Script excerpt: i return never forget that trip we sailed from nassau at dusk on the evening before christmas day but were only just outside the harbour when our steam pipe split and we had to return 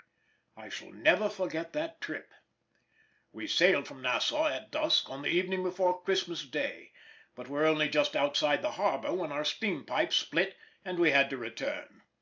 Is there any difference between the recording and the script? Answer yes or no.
yes